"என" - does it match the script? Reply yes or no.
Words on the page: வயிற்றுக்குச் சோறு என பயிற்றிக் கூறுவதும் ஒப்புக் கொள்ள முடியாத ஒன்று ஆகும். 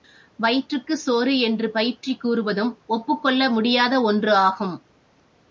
no